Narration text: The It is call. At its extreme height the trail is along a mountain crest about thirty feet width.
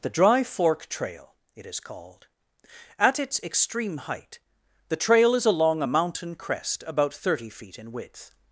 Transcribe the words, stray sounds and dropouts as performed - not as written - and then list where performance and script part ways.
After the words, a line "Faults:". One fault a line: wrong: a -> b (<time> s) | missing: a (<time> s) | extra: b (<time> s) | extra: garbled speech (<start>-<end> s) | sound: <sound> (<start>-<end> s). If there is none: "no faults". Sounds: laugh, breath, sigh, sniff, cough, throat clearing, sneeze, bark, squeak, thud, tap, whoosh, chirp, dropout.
The Dry Fork Trail, it is called. At its extreme height the trail is along a mountain crest about thirty feet in width.
Faults:
extra: Dry Fork Trail (0.1 s)
wrong: call -> called (1.8 s)
extra: in (7.8 s)